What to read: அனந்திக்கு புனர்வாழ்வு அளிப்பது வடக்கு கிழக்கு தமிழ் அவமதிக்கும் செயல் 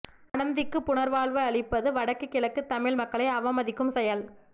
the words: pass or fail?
fail